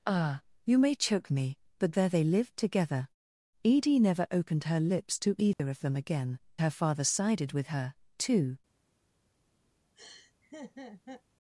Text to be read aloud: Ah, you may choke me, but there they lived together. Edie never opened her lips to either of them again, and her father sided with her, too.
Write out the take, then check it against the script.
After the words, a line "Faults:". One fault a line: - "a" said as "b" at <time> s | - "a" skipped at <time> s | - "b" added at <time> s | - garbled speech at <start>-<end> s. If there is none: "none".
Ah, you may choke me, but there they lived together. Edie never opened her lips to either of them again, her father sided with her, too.
Faults:
- "and" skipped at 6.4 s